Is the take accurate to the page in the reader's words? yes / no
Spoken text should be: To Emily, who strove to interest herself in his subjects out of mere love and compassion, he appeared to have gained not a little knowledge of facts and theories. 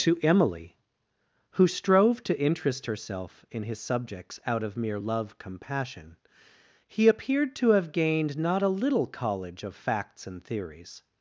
no